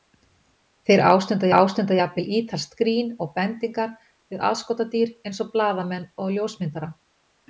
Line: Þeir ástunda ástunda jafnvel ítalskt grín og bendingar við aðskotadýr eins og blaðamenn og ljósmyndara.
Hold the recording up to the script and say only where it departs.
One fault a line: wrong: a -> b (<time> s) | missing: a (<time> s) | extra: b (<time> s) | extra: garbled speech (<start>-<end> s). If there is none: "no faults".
no faults